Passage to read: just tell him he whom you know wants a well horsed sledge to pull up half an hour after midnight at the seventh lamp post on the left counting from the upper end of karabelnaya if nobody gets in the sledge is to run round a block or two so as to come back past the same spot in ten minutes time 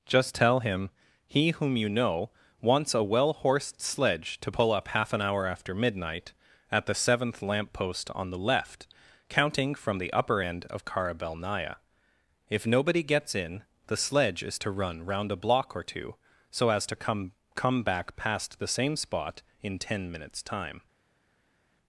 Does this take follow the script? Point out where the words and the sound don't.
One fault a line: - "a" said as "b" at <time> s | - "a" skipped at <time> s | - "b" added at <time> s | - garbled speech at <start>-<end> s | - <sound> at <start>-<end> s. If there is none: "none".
- "come" added at 17.5 s